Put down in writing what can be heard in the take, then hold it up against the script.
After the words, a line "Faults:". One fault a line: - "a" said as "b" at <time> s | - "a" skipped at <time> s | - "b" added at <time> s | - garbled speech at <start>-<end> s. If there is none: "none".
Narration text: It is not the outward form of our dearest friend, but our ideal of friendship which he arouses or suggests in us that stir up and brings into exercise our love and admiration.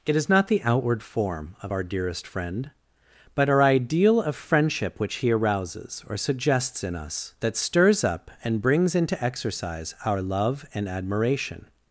It is not the outward form of our dearest friend, but our ideal of friendship which he arouses or suggests in us that stirs up and brings into exercise our love and admiration.
Faults:
- "stir" said as "stirs" at 7.6 s